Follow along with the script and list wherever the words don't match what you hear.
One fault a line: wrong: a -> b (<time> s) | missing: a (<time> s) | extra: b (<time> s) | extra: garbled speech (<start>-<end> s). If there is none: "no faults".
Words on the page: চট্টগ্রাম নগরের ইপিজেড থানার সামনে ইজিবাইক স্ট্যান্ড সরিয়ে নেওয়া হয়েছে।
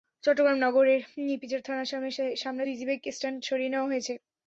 no faults